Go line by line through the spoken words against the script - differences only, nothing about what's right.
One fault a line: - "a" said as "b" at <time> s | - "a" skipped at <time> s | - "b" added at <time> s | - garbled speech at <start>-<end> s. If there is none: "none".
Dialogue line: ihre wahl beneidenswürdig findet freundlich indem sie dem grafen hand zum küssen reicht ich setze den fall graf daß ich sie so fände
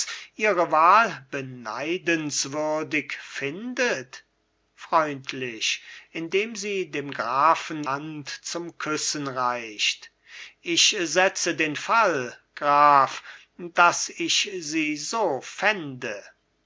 none